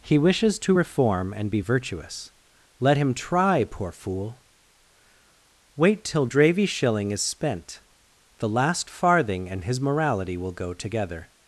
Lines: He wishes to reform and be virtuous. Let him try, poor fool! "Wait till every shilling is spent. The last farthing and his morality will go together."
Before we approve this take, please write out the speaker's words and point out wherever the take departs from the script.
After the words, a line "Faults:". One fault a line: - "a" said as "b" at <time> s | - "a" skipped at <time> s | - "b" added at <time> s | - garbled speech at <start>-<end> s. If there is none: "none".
He wishes to reform and be virtuous. Let him try, poor fool! "Wait till dravy shilling is spent. The last farthing and his morality will go together."
Faults:
- "every" said as "dravy" at 6.2 s